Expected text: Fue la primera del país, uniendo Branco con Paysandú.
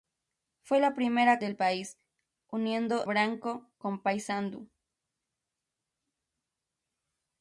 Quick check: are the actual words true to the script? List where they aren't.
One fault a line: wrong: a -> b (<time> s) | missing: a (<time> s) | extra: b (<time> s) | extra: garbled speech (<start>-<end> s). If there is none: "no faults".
no faults